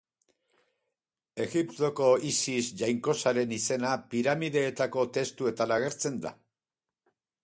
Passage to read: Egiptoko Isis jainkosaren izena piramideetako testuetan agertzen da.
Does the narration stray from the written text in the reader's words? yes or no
no